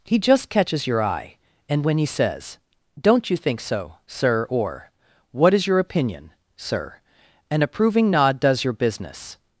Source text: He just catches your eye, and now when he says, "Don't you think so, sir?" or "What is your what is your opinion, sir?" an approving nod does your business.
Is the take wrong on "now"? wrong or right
wrong